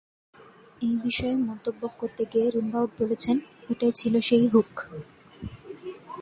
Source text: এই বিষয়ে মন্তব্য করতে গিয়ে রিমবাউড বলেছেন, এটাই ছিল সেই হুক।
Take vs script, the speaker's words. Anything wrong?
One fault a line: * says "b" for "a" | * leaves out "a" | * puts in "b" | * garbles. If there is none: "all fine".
all fine